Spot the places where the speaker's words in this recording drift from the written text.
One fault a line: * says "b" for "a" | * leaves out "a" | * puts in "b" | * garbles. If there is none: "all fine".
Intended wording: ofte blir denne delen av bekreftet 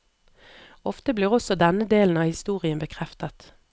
* puts in "også"
* puts in "historien"